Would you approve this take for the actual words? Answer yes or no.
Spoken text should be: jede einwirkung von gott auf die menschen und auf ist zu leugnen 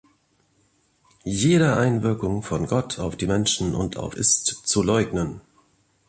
yes